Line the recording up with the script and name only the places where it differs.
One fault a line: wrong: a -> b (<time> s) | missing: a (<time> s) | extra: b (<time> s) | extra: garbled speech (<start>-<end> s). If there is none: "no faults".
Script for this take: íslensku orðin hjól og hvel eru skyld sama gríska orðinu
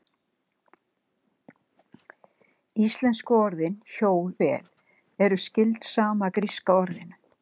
missing: og (4.3 s)